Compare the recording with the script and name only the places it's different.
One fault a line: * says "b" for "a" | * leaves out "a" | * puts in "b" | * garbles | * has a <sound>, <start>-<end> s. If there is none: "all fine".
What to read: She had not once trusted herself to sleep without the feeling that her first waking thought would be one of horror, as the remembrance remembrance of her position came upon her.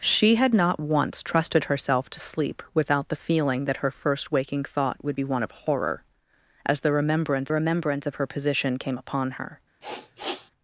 * has a sniff, 9.8-10.5 s